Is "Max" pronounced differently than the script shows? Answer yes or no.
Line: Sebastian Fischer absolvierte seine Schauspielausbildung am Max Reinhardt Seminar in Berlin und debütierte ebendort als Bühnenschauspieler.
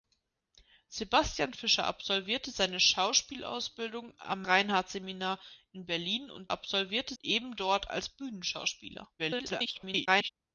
yes